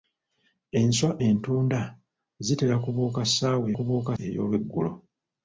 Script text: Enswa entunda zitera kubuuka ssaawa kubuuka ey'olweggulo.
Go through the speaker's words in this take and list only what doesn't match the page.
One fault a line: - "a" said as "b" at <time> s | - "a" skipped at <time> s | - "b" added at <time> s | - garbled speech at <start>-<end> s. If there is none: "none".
none